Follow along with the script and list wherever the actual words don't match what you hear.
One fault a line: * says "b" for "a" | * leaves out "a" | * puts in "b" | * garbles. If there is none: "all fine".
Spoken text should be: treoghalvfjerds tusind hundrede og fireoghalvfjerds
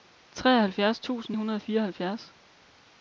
all fine